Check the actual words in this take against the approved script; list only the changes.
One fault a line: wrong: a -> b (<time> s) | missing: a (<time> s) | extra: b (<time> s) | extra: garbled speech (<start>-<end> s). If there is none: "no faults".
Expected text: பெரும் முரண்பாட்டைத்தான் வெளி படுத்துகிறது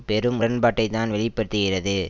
no faults